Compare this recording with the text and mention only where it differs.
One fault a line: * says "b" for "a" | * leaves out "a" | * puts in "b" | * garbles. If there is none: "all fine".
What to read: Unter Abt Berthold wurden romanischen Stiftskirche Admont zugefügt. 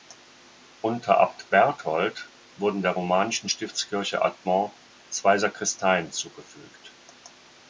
* puts in "der"
* puts in "zwei Sakristeien"